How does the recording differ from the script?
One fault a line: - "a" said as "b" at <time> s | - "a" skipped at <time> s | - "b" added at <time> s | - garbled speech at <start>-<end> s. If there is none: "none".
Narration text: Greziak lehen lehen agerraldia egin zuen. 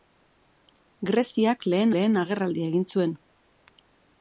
none